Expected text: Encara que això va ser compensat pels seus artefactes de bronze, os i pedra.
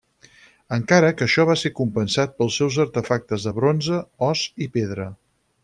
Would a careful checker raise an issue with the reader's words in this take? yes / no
no